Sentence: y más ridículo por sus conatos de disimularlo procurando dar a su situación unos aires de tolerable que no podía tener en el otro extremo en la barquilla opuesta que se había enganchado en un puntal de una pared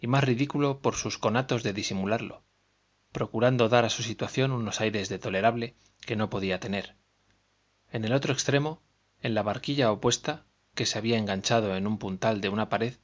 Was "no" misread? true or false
false